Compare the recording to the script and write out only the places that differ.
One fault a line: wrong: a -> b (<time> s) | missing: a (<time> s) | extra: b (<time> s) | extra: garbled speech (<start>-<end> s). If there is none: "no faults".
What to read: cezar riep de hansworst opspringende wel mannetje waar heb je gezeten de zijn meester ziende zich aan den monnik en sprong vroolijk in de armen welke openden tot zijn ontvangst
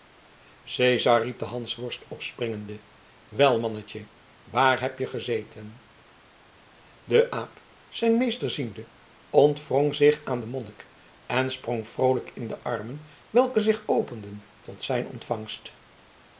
extra: aap (7.3 s)
extra: ontwrong (9.3 s)
extra: zich (13.6 s)